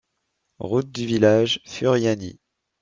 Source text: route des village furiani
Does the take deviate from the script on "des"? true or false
true